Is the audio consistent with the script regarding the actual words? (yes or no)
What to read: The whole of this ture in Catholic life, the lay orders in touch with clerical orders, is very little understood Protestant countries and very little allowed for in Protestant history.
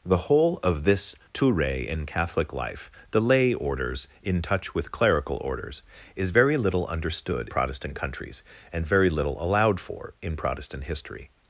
yes